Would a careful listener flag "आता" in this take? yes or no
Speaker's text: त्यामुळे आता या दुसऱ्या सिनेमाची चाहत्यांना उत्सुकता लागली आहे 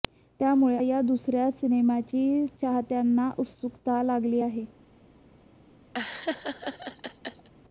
yes